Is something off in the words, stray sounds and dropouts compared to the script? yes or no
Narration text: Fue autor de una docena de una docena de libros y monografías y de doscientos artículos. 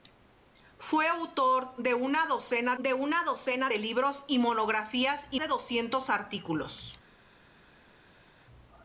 no